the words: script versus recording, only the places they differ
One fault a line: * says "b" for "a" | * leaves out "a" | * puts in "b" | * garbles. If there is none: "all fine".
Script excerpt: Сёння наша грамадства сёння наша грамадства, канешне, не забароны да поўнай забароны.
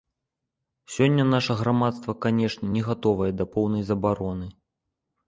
* leaves out "сёння наша грамадства"
* says "гатовае" for "забароны"